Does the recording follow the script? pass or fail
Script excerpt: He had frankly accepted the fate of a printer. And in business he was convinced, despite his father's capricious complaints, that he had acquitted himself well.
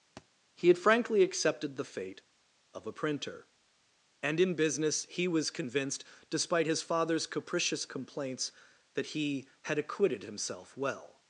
pass